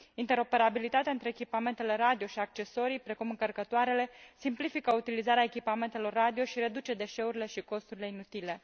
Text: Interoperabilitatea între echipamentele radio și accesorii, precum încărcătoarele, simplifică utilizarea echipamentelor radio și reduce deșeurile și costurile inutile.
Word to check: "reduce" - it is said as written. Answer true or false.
true